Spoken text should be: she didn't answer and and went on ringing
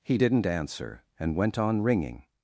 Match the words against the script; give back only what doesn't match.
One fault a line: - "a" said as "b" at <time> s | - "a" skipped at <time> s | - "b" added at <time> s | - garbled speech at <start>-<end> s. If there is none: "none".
- "she" said as "he" at 0.0 s
- "and" skipped at 1.4 s